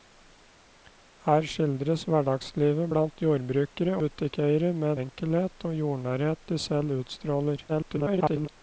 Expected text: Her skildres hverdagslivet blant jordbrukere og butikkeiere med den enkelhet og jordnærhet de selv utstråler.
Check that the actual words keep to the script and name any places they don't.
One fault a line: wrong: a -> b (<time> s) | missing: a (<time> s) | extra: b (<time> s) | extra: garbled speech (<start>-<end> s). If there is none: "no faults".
missing: og (4.0 s)
missing: den (5.0 s)
extra: garbled speech (7.7-8.5 s)